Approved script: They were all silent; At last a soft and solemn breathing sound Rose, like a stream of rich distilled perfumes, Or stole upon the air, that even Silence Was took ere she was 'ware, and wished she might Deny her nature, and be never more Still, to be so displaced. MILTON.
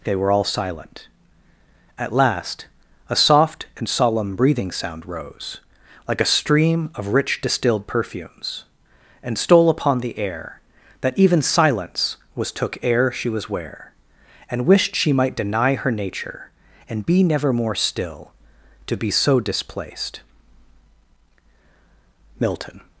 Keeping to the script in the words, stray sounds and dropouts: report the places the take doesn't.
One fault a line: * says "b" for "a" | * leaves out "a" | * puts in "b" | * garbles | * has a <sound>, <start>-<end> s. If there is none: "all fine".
* says "And" for "Or"